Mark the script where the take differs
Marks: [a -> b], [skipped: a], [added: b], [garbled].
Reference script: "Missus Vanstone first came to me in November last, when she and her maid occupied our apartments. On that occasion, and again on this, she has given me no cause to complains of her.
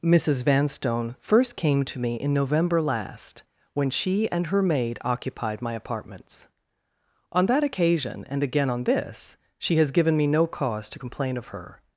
"Missus Vanstone first came to me in November last, when she and her maid occupied [our -> my] apartments. On that occasion, and again on this, she has given me no cause to [complains -> complain] of her.